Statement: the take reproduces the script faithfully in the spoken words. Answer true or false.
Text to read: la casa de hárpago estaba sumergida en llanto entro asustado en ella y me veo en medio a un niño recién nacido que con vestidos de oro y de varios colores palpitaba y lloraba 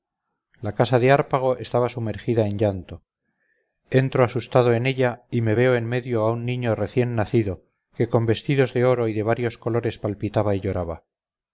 true